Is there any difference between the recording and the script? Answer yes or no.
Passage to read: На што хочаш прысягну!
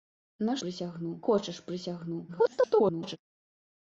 yes